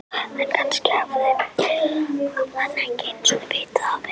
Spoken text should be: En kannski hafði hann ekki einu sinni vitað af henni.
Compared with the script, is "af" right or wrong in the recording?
right